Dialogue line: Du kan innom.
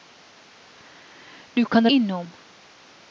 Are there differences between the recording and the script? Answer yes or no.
no